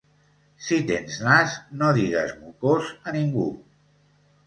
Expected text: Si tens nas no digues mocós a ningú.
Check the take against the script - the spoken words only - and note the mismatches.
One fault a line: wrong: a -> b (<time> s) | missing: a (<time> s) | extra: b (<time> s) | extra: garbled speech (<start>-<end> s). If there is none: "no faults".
no faults